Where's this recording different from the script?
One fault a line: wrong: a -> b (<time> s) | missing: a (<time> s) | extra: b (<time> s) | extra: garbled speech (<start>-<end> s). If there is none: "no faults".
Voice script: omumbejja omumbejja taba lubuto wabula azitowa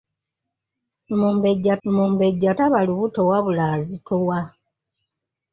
no faults